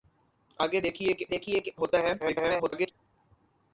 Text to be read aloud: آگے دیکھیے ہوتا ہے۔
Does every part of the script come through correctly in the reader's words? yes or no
no